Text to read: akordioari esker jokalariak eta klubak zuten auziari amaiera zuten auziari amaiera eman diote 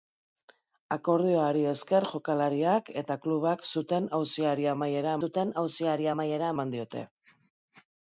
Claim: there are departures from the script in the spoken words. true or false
false